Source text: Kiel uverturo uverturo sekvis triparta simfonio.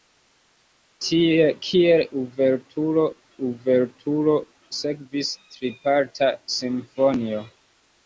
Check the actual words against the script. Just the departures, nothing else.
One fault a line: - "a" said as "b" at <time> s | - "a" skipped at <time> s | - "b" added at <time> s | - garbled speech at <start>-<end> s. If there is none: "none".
none